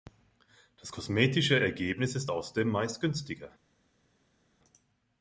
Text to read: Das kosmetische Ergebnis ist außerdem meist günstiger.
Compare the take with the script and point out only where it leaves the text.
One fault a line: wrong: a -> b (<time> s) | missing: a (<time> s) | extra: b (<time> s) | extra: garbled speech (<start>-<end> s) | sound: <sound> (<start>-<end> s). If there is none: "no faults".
no faults